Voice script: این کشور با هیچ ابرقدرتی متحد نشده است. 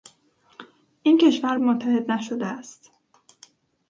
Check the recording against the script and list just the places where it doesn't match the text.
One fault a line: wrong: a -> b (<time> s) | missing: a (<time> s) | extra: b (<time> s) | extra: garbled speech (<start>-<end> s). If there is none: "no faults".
missing: با هیچ ابرقدرتی (1.6 s)